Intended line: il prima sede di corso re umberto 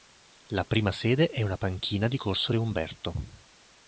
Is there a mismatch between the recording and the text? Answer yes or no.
yes